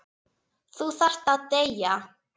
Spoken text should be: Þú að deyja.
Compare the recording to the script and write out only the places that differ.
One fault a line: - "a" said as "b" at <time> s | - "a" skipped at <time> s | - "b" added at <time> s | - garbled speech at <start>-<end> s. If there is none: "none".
- "þarft" added at 1.0 s